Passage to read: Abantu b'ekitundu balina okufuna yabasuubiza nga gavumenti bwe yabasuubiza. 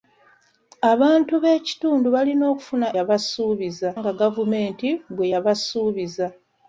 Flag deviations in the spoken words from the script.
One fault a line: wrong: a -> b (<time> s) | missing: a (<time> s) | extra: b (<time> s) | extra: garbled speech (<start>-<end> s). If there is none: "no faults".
no faults